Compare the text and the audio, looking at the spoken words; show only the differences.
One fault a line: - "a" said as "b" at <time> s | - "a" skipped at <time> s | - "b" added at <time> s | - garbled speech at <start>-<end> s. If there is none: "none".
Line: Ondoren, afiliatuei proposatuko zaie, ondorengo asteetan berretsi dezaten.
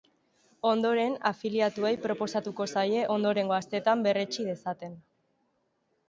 none